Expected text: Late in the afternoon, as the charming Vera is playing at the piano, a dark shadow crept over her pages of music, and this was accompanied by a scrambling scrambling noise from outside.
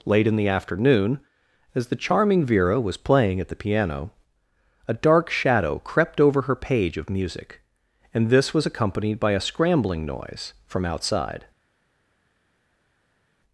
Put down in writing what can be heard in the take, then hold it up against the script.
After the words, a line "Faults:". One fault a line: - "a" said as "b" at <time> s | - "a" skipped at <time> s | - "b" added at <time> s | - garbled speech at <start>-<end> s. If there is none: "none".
Late in the afternoon, as the charming Vera was playing at the piano, a dark shadow crept over her page of music, and this was accompanied by a scrambling noise from outside.
Faults:
- "is" said as "was" at 2.8 s
- "pages" said as "page" at 6.5 s
- "scrambling" skipped at 10.1 s